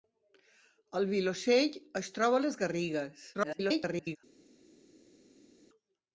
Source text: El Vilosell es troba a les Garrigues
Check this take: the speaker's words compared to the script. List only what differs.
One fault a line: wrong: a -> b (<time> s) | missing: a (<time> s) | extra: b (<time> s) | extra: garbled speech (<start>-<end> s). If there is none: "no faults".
extra: garbled speech (3.3-4.2 s)